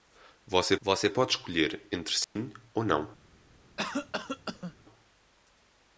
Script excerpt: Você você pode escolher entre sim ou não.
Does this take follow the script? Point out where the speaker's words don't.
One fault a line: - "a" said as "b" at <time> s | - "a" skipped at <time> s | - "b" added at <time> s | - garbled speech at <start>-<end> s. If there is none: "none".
none